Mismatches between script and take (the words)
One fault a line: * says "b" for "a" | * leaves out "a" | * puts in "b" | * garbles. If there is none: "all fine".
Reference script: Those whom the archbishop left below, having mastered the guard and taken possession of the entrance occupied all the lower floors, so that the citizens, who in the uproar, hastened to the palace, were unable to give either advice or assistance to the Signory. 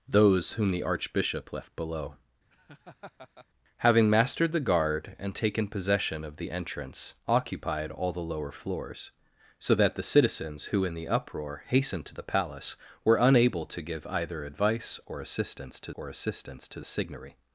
* puts in "or assistance to"